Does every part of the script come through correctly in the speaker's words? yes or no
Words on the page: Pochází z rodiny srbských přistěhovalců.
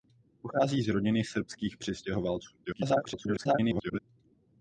no